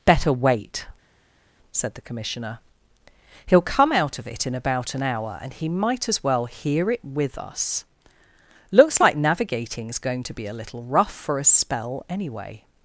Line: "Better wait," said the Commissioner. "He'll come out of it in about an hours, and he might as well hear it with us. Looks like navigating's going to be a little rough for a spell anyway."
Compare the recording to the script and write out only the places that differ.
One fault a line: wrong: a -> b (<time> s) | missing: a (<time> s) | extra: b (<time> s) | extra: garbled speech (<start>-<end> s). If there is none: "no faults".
wrong: hours -> hour (5.0 s)